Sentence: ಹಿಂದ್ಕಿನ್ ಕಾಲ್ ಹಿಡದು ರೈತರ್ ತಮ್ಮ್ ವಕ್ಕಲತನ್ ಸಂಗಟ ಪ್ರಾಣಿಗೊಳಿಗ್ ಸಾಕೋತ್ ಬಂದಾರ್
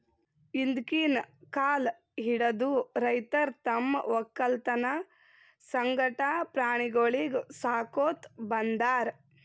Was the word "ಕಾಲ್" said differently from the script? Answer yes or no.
no